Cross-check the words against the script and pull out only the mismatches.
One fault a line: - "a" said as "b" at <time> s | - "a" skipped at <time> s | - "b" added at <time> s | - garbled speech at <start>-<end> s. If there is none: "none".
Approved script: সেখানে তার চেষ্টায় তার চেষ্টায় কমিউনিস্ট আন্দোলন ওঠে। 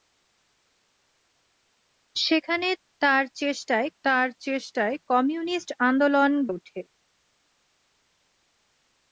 none